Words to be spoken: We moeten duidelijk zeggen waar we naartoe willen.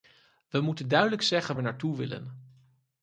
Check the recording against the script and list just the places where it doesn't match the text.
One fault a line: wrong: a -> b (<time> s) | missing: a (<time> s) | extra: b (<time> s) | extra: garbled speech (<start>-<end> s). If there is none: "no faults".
missing: waar (1.6 s)